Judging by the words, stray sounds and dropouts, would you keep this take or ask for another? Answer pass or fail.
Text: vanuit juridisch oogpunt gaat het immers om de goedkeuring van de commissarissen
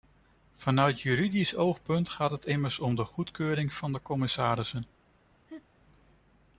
fail